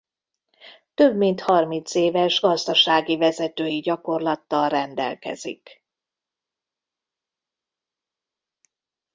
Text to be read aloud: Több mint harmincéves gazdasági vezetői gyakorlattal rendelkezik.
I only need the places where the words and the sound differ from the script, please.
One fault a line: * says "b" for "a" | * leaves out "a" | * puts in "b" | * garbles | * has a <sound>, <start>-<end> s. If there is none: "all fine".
all fine